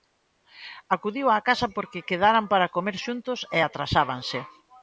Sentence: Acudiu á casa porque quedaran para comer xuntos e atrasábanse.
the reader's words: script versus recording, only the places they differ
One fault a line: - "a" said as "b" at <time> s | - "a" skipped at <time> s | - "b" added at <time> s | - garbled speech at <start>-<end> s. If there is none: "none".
none